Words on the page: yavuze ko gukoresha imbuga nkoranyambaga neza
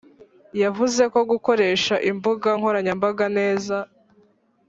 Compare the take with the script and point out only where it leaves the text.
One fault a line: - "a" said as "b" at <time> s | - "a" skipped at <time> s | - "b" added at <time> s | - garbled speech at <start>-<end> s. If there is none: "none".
none